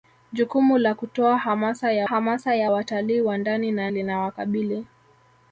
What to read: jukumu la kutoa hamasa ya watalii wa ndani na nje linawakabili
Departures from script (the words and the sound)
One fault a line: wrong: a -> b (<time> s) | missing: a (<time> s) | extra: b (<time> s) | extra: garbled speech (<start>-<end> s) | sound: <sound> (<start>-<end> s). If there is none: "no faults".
extra: hamasa ya (2.0 s)
missing: nje (3.9 s)